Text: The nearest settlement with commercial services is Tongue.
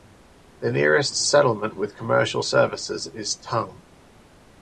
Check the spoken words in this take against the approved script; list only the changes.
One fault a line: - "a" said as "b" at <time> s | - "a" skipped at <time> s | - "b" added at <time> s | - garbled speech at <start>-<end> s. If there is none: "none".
none